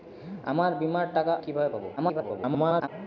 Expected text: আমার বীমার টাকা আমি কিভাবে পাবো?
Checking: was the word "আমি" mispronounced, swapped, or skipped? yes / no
yes